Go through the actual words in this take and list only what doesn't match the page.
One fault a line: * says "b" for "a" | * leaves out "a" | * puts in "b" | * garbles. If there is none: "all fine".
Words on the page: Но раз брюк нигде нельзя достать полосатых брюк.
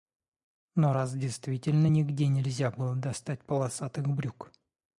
* says "действительно" for "брюк"
* puts in "было"